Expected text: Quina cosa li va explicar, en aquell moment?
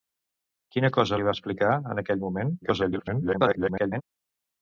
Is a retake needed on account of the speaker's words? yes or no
yes